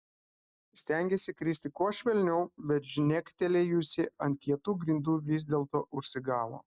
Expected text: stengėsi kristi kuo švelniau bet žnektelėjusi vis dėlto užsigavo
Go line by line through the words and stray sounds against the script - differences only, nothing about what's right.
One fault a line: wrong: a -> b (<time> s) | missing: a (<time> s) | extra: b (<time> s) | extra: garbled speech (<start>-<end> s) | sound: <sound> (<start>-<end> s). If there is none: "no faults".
extra: ant kietų grindų (4.3 s)